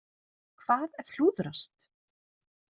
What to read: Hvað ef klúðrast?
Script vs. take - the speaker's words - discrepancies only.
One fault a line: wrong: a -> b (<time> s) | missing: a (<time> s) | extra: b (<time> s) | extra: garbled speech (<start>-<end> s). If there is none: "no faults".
no faults